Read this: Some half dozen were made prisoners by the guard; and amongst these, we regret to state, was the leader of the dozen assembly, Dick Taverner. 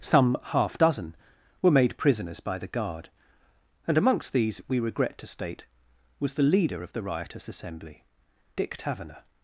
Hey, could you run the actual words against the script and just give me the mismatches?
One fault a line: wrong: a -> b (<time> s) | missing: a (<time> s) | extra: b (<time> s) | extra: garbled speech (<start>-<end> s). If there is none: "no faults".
wrong: dozen -> riotous (7.0 s)